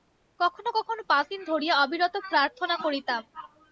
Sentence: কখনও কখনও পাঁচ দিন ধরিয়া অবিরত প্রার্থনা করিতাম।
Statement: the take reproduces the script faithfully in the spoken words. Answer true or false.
true